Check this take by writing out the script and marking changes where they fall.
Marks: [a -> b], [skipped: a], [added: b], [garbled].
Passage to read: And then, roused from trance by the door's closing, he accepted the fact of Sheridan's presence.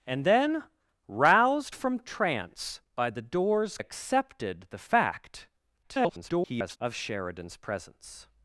And then, roused from trance by the door's [skipped: closing, he] accepted the fact [garbled] of Sheridan's presence.